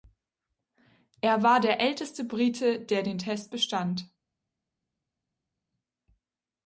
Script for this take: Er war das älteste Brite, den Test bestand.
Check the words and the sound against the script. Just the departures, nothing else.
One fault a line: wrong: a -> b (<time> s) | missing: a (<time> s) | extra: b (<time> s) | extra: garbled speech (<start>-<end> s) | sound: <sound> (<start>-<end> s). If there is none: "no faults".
wrong: das -> der (1.6 s)
extra: der (2.8 s)